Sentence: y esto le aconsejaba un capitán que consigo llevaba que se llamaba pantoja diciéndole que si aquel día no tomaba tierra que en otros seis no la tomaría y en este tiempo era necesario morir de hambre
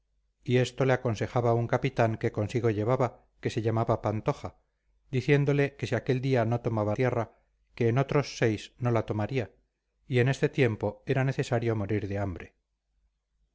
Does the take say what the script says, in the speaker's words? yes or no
yes